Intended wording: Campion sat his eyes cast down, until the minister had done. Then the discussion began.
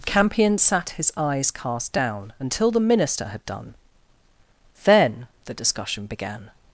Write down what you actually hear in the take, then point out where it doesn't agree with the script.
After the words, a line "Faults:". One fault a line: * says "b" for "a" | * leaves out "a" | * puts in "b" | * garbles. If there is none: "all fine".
Campion sat his eyes cast down, until the minister had done. Then the discussion began.
Faults:
all fine